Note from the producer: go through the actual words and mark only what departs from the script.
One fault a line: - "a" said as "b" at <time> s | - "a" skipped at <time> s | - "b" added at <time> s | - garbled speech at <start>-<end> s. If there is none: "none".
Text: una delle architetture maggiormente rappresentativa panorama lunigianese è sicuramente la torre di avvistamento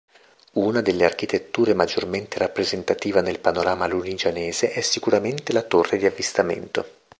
- "nel" added at 3.2 s